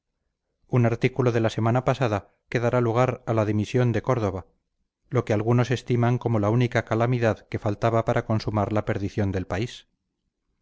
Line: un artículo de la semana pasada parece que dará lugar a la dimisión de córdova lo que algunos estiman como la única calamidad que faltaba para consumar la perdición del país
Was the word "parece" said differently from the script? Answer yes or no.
yes